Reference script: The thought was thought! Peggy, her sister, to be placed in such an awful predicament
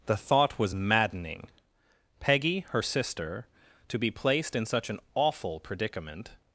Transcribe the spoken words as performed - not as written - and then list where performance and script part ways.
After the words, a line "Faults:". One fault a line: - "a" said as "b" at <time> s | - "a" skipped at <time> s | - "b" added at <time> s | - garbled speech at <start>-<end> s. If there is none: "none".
The thought was maddening! Peggy, her sister, to be placed in such an awful predicament
Faults:
- "thought" said as "maddening" at 0.7 s